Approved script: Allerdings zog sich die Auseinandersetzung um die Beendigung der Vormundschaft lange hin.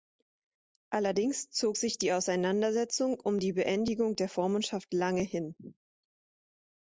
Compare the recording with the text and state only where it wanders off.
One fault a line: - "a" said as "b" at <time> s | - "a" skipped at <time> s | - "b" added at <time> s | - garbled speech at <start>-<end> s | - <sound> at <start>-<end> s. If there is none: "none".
none